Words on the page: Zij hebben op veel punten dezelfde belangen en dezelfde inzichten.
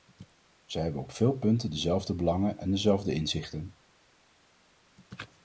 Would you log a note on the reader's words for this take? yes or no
no